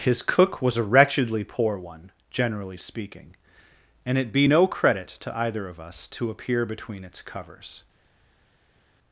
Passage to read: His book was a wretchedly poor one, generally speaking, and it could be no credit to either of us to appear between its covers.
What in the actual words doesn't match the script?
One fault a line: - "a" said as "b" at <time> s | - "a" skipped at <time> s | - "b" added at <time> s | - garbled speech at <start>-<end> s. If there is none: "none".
- "book" said as "cook" at 0.2 s
- "could" skipped at 4.3 s